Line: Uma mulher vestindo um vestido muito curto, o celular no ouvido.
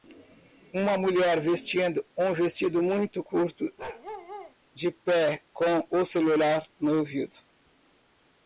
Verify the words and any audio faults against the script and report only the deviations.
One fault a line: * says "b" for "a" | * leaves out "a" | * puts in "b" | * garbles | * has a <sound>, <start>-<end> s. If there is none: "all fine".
* has a bark, 3.8-4.5 s
* puts in "de pé com"